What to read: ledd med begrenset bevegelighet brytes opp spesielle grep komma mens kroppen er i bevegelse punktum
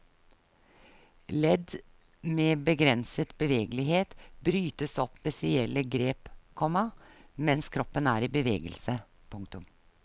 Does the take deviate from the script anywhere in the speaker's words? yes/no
no